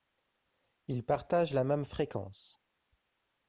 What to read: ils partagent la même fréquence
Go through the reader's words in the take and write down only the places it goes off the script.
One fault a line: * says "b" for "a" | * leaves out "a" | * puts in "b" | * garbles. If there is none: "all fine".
all fine